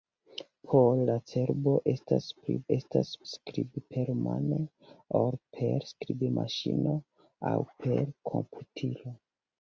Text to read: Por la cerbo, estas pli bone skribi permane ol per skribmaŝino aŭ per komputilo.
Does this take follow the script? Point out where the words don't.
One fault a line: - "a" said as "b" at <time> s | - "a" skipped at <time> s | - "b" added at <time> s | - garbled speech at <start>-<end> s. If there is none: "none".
- "bone" said as "estas" at 2.7 s